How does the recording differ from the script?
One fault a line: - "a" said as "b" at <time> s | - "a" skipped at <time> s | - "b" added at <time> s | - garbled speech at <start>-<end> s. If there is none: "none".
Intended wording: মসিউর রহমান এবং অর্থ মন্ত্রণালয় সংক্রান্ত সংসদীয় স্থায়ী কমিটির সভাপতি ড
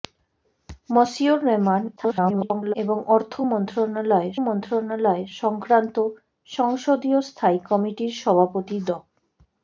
- garbled speech at 2.0-2.7 s
- "মন্ত্রণালয়" added at 4.5 s